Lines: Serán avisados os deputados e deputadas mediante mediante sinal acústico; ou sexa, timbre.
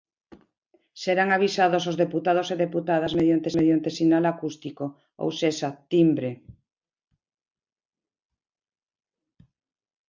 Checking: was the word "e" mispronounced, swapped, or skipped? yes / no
no